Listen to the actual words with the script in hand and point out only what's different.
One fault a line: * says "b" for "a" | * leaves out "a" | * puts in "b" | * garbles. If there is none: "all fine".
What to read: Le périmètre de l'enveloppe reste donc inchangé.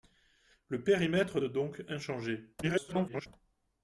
* leaves out "de l'enveloppe reste"
* garbles